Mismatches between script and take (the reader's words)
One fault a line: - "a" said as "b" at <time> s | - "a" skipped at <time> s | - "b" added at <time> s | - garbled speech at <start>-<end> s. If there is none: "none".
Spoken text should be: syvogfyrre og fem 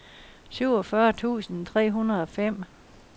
- "tusind tre hundrede" added at 1.1 s